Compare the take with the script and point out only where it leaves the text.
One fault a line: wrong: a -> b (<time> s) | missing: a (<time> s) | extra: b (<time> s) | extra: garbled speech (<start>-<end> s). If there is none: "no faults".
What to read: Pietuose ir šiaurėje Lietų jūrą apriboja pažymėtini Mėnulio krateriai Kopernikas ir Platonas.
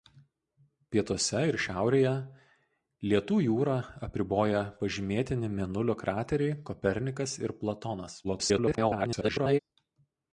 extra: garbled speech (8.2-9.6 s)